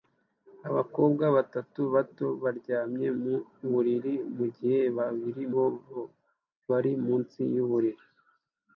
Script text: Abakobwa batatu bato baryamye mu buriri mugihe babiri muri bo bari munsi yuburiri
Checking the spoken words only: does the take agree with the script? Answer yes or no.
no